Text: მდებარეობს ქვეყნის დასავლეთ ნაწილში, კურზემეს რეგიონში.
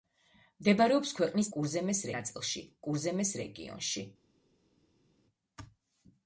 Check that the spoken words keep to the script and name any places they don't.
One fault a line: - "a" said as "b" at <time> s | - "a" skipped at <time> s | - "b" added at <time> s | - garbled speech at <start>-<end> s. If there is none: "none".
- "დასავლეთ" said as "კურზემეს" at 1.6 s